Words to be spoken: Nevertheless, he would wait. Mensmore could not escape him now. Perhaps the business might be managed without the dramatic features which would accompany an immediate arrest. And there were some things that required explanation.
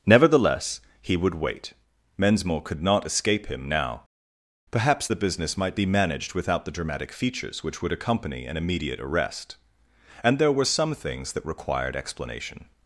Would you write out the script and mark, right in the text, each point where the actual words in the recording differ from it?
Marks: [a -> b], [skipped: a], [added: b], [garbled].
Nevertheless, he would wait. Mensmore could not escape him now. Perhaps the business might be managed without the dramatic features which would accompany an immediate arrest. And there were some things that required explanation.